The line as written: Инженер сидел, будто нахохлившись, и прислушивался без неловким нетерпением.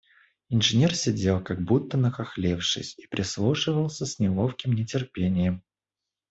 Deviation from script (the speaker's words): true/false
true